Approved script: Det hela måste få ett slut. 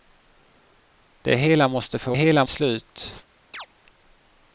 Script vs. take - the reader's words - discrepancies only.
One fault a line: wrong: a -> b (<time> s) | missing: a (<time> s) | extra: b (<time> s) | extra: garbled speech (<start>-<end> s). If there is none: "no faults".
wrong: ett -> hela (2.1 s)